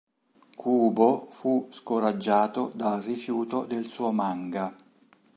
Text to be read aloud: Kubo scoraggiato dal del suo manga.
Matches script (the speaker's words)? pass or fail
fail